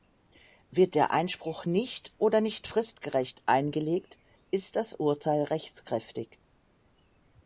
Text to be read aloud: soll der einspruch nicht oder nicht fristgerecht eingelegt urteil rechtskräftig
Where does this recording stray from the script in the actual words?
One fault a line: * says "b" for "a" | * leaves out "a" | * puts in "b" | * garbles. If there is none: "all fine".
* says "wird" for "soll"
* puts in "ist das"